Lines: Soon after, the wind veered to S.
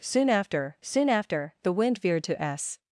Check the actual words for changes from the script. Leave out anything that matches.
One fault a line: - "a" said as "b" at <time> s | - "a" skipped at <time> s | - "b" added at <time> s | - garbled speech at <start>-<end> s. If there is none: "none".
- "soon after" added at 0.8 s